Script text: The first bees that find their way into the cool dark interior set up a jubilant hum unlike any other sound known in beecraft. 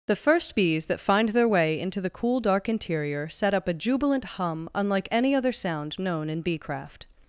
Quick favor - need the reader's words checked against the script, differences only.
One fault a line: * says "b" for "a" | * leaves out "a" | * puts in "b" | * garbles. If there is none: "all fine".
all fine